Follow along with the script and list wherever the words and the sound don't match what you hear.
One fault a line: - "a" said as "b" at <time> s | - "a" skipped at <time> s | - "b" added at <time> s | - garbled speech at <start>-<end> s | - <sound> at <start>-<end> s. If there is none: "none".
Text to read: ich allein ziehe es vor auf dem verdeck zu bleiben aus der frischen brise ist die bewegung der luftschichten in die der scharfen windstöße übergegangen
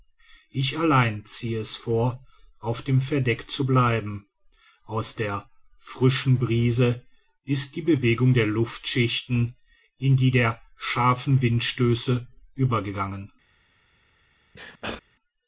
- sneeze at 14.5-15.0 s